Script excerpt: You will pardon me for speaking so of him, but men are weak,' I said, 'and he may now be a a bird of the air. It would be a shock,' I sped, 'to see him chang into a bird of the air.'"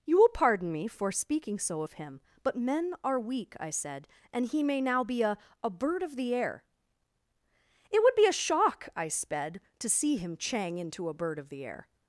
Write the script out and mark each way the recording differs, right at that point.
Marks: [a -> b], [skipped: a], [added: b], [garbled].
You will pardon me for speaking so of him, but men are weak,' I said, 'and he may now be a a bird of the air. It would be a shock,' I sped, 'to see him chang into a bird of the air.'"